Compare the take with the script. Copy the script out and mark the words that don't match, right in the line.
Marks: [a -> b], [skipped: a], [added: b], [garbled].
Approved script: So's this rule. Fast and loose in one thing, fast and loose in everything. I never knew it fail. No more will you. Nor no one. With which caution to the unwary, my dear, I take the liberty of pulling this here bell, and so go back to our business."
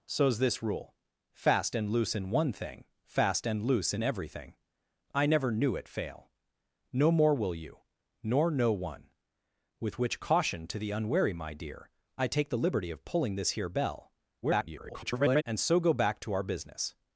So's this rule. Fast and loose in one thing, fast and loose in everything. I never knew it fail. No more will you. Nor no one. With which caution to the unwary, my dear, I take the liberty of pulling this here bell, [garbled] and so go back to our business."